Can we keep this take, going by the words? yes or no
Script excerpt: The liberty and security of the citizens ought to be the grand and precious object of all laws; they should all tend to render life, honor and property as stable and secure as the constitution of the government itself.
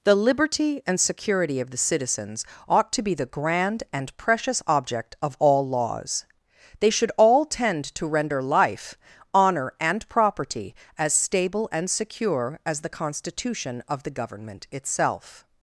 yes